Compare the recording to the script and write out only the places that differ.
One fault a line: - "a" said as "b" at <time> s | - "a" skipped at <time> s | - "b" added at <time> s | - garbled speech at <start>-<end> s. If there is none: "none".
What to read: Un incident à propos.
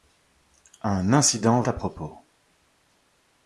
none